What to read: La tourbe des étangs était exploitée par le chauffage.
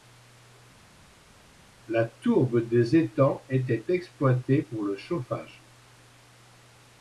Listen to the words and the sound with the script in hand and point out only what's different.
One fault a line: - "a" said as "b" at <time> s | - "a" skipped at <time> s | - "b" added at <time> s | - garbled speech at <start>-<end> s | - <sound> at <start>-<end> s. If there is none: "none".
- "par" said as "pour" at 4.6 s